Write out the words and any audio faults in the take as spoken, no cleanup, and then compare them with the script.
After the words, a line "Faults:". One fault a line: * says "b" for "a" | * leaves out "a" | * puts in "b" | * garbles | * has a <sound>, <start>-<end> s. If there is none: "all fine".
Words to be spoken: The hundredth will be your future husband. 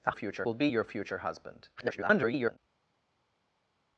The future will be your future husband. [garbled]
Faults:
* says "future" for "hundredth"
* garbles